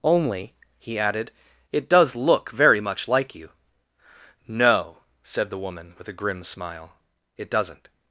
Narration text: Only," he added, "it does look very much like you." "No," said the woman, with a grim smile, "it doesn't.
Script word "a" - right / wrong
right